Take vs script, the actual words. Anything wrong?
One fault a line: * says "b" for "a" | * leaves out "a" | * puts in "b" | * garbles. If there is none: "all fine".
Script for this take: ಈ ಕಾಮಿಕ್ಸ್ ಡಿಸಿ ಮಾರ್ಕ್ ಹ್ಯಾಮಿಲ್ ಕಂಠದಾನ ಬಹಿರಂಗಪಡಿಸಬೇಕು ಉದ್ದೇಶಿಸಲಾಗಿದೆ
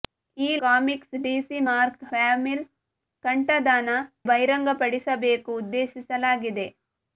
all fine